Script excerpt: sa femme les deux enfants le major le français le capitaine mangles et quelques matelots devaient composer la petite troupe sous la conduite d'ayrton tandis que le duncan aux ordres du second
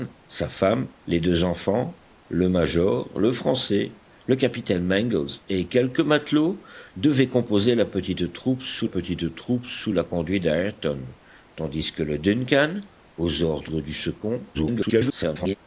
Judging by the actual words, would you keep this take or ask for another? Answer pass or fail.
fail